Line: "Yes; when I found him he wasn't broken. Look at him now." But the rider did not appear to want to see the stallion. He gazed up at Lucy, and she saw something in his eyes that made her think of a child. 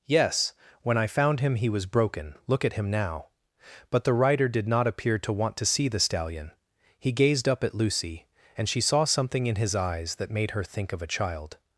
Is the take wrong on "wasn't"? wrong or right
wrong